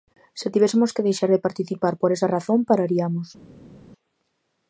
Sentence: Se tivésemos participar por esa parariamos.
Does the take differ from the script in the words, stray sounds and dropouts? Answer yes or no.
yes